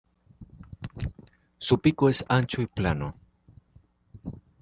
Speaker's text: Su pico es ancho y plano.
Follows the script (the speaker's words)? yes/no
yes